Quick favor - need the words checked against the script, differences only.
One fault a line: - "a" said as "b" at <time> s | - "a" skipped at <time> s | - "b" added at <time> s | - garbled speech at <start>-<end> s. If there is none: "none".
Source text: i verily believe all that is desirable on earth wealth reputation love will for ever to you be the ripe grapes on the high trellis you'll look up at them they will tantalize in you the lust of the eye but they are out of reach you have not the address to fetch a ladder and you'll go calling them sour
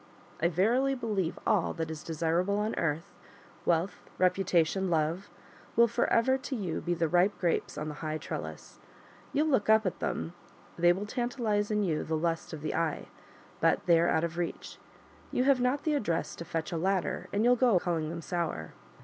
none